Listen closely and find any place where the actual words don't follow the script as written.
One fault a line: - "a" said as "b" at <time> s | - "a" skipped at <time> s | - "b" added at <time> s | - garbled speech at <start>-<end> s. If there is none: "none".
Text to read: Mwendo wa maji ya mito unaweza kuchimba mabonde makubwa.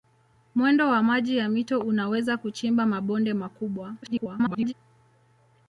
- garbled speech at 4.0-4.7 s